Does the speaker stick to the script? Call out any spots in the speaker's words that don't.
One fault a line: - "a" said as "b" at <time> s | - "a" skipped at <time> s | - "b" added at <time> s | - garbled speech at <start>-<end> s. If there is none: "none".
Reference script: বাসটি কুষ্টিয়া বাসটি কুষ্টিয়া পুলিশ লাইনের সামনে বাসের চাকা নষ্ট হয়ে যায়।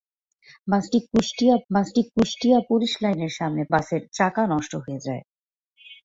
none